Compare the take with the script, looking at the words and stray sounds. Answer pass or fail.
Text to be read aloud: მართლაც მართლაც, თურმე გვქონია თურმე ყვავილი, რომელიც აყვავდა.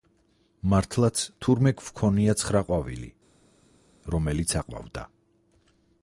fail